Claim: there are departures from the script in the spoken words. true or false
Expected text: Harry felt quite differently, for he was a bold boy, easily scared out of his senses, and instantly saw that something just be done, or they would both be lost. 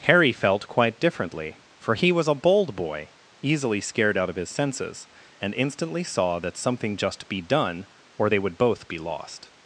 false